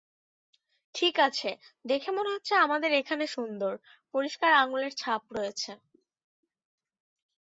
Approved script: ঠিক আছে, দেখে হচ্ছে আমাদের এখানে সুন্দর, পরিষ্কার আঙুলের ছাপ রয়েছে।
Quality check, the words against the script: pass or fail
fail